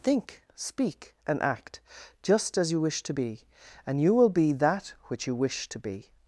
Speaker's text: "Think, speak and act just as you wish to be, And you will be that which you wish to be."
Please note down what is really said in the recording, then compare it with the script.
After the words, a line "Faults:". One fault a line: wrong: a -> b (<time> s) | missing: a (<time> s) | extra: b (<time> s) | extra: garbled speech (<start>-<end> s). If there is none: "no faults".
"Think, speak and act just as you wish to be, And you will be that which you wish to be."
Faults:
no faults